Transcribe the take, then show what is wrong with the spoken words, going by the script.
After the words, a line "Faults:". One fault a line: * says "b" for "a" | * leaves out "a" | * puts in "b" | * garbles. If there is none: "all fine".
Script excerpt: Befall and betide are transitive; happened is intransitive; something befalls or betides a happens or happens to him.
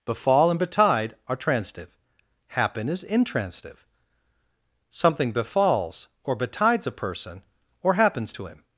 Befall and betide are transitive; happen is intransitive; something befalls or betides a person or happens to him.
Faults:
* says "happen" for "happened"
* says "person" for "happens"